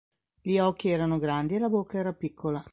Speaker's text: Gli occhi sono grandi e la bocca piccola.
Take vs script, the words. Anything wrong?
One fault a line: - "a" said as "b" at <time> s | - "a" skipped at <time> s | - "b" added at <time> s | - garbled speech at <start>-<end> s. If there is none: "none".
- "sono" said as "erano" at 0.9 s
- "era" added at 2.0 s